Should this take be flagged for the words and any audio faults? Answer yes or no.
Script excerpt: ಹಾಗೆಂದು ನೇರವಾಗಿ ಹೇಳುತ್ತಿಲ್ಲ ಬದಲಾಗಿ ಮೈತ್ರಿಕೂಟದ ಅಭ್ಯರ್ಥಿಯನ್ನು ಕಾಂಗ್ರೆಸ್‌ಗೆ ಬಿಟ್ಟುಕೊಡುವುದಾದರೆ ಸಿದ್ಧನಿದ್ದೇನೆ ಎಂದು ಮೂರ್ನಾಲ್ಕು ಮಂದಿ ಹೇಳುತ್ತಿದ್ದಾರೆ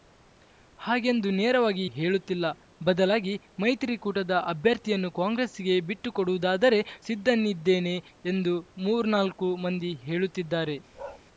yes